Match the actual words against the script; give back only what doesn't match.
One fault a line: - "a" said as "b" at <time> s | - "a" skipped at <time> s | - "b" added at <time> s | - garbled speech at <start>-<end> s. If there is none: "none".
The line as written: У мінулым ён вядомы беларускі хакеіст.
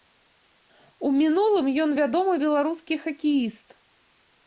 none